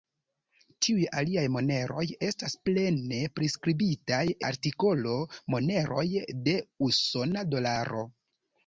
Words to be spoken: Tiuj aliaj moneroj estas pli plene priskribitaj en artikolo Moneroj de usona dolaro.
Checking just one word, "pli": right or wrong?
wrong